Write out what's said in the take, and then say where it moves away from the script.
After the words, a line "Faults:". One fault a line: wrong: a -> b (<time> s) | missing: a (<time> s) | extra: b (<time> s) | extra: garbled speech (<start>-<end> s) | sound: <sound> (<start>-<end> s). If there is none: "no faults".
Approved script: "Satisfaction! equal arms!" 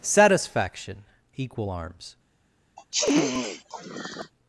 "Satisfaction! equal arms!"
Faults:
sound: sniff (2.8-4.3 s)